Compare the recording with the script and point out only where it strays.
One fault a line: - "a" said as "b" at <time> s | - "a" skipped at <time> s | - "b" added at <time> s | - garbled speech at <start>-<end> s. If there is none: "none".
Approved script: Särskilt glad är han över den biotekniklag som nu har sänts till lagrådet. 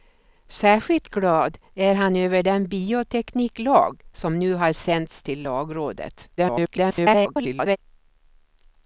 - garbled speech at 6.4-7.8 s